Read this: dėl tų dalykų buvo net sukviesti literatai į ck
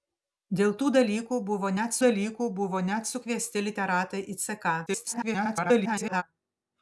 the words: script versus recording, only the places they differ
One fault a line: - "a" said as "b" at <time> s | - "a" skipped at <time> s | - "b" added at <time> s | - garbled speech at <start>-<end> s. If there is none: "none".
- "dalykų buvo net" added at 2.0 s
- garbled speech at 4.9-6.2 s